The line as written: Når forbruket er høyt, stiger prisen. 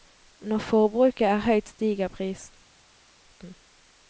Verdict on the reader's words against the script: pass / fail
pass